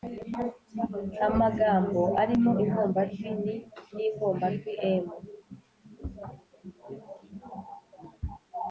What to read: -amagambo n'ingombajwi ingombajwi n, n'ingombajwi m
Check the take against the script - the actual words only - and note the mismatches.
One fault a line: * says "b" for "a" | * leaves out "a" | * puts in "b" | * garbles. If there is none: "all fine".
* says "arimo" for "n'ingombajwi"